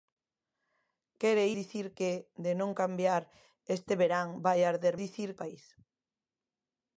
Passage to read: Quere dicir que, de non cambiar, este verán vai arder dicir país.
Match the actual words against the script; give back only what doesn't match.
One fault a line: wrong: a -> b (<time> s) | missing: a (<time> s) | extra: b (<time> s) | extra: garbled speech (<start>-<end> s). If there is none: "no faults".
no faults